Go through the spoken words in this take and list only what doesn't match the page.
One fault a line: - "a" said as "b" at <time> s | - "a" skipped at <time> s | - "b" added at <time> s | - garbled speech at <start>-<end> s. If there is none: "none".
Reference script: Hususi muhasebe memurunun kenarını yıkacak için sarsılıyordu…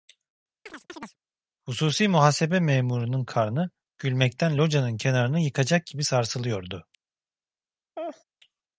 - "karnı gülmekten locanın" added at 3.2 s
- "için" said as "gibi" at 5.9 s